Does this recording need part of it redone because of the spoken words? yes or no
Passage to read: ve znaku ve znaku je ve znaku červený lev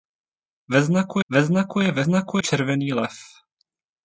no